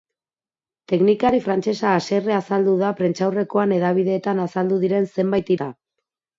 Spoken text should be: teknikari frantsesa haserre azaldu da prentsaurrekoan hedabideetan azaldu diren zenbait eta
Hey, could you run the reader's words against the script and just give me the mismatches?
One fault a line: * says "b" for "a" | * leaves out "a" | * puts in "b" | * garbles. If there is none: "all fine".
all fine